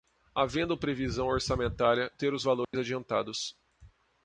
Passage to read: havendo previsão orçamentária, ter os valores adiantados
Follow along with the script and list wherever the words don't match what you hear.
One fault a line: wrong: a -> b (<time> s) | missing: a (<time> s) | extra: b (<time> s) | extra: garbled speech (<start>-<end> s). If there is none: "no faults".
no faults